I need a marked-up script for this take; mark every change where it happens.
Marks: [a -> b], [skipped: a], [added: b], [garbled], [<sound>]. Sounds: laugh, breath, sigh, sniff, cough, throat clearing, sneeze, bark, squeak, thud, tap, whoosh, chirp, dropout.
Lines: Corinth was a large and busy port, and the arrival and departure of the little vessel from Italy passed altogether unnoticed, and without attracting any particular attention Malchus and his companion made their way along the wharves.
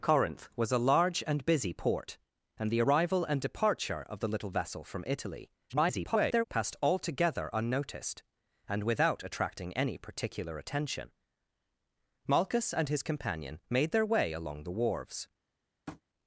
Corinth was a large and busy port, and the arrival and departure of the little vessel from Italy [garbled] passed altogether unnoticed, and without attracting any particular attention Malchus and his companion made their way along the wharves. [tap]